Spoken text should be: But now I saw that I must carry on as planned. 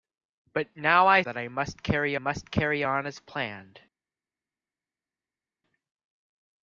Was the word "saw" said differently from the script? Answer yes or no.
yes